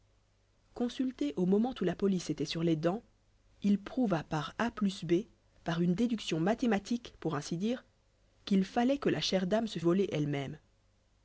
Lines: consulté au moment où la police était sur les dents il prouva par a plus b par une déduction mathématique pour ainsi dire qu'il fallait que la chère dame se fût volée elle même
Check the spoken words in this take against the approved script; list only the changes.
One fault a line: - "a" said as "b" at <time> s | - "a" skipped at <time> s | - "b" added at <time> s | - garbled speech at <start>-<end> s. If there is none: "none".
- "fût" skipped at 9.8 s